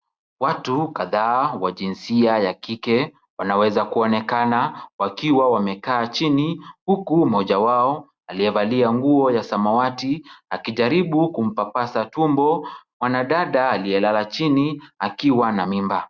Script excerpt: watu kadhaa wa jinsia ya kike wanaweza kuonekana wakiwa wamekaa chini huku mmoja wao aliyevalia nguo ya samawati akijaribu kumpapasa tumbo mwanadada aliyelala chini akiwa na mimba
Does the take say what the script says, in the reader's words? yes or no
yes